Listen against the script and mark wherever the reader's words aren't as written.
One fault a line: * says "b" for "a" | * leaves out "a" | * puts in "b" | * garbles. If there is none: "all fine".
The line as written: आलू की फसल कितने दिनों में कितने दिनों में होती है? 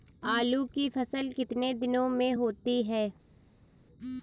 * leaves out "कितने दिनों में"